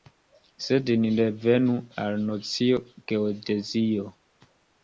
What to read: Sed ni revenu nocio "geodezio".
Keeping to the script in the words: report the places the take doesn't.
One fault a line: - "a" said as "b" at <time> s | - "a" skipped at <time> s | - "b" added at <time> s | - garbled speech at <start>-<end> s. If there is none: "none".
- "al" added at 2.0 s